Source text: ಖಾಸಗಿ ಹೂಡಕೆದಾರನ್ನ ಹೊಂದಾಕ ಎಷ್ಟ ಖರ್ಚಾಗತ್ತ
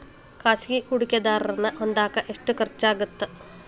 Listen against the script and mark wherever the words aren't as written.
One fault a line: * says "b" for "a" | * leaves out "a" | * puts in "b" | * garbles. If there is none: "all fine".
all fine